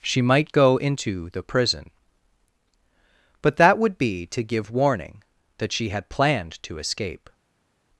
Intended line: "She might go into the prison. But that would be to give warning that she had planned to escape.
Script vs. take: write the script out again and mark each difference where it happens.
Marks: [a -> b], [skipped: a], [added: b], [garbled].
"She might go into the prison. But that would be to give warning that she had planned to escape.